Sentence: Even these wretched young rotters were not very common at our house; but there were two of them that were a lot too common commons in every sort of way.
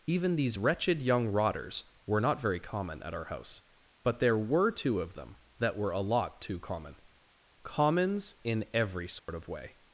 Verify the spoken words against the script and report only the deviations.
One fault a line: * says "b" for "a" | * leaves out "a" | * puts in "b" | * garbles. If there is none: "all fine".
all fine